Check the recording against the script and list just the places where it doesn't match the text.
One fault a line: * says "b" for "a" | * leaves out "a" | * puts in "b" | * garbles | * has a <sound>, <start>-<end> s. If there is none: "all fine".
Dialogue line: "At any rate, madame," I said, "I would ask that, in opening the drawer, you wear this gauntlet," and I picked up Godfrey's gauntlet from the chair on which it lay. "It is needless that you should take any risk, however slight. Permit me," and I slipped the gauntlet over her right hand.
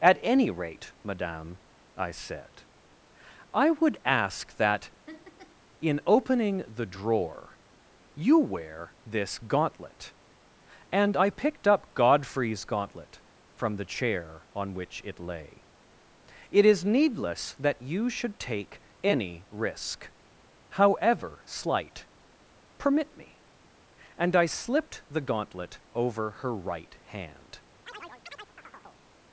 * has a laugh, 5.1-5.6 s
* has a chirp, 27.9-29.0 s